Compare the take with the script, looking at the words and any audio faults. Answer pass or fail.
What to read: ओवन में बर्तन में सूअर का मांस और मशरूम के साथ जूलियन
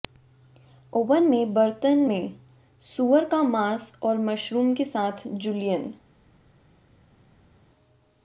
pass